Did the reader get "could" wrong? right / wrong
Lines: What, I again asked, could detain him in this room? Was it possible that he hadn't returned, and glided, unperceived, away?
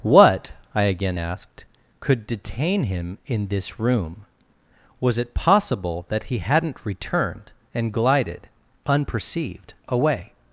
right